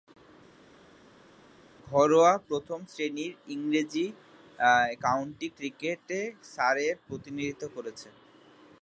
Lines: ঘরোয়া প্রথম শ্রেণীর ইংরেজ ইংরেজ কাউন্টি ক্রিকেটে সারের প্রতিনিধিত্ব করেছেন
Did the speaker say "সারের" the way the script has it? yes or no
yes